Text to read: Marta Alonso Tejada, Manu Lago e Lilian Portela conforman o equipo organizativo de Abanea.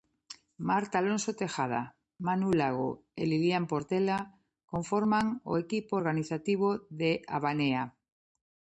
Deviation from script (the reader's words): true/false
false